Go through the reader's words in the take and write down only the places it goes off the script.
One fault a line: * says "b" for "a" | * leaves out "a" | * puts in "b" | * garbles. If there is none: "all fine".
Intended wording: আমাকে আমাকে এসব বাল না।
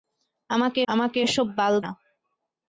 all fine